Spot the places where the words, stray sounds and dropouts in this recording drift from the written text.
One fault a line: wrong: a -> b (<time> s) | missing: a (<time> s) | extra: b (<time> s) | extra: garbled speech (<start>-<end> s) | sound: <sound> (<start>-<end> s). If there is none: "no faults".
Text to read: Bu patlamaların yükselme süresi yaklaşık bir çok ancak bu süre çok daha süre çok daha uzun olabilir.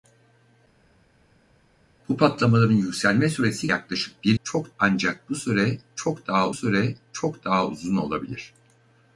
no faults